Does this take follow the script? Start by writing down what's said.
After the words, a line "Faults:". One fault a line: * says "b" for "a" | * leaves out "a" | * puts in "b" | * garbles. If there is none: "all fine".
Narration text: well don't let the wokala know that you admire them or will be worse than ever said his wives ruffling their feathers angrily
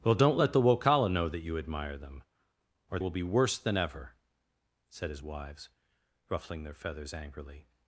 well don't let the wokala know that you admire them or will be worse than ever said his wives ruffling their feathers angrily
Faults:
all fine